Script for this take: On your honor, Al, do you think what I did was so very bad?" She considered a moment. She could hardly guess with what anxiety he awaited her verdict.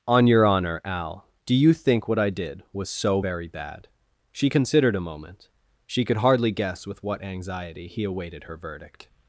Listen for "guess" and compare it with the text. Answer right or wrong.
right